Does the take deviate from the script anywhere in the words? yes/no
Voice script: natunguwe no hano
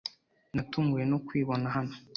yes